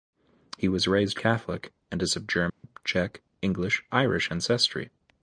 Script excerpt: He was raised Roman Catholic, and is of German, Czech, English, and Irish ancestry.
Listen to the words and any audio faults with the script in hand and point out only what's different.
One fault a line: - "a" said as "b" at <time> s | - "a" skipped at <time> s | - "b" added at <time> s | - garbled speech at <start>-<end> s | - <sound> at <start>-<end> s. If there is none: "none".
- "Roman" skipped at 1.2 s
- dropout at 2.5-2.6 s
- "and" skipped at 3.8 s